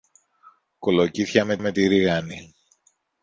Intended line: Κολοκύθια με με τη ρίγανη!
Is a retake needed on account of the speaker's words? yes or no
no